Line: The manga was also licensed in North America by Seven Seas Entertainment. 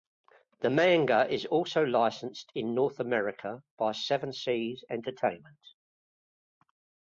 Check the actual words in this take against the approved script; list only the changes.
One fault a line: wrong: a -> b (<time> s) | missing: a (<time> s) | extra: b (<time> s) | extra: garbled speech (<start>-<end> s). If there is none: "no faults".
wrong: was -> is (1.3 s)